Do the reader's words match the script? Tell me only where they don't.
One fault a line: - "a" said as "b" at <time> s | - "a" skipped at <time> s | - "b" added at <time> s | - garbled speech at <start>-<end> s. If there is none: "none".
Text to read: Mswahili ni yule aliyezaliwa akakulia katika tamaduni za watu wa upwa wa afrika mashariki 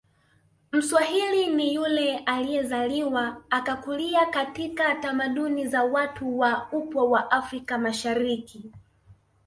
none